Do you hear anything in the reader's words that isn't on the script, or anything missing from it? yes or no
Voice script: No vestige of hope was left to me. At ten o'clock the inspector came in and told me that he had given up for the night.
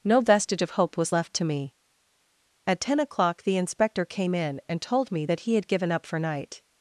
yes